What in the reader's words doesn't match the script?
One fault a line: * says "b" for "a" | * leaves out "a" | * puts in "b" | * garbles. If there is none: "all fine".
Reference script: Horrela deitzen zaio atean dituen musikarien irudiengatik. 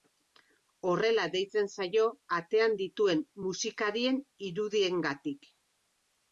all fine